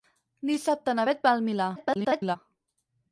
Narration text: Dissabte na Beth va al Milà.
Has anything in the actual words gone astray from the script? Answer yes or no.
yes